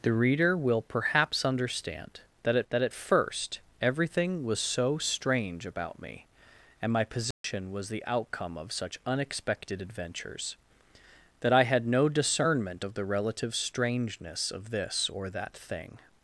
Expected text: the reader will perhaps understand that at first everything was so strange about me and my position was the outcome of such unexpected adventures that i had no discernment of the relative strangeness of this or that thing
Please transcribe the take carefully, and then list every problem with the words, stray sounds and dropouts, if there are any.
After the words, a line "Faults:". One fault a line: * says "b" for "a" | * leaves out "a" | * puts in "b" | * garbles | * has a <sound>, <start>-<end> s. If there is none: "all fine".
the reader will perhaps understand that at that at first everything was so strange about me and my position was the outcome of such unexpected adventures that i had no discernment of the relative strangeness of this or that thing
Faults:
* puts in "that at"
* has a dropout, 7.3-7.4 s